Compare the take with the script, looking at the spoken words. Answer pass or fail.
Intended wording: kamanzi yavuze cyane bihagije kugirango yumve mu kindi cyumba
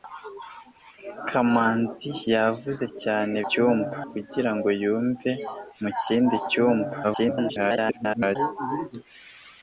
fail